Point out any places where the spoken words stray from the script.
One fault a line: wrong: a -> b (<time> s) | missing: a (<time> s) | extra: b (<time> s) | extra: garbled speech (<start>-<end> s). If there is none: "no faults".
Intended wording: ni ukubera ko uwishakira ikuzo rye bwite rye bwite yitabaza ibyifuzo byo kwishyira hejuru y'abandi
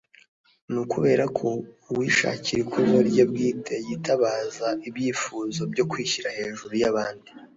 missing: rye bwite (3.8 s)